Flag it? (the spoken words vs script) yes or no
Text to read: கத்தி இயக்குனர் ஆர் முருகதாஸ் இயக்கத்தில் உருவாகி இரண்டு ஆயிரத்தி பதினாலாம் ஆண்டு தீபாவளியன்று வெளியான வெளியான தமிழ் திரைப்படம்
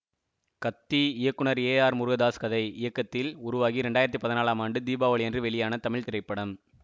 yes